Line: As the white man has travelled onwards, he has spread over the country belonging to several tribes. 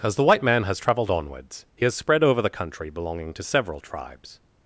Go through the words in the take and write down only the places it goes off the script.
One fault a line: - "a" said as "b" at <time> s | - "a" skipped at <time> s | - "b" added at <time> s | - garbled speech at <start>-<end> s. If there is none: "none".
none